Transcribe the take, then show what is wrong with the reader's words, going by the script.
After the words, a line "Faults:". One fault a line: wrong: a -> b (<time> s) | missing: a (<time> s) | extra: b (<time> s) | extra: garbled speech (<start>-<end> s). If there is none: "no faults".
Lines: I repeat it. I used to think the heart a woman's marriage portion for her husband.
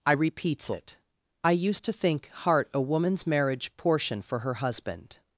I repeats it. I used to think heart a woman's marriage portion for her husband.
Faults:
wrong: repeat -> repeats (0.1 s)
missing: the (2.3 s)